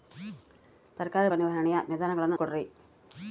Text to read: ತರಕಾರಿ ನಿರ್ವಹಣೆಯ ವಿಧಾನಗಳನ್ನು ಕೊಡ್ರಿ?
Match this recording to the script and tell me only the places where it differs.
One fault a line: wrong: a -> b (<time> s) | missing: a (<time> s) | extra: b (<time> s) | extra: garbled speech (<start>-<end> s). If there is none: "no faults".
no faults